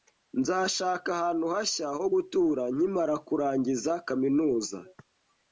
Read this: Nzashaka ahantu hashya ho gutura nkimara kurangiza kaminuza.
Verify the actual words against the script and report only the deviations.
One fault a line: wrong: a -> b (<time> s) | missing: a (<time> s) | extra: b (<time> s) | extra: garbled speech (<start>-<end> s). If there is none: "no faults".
no faults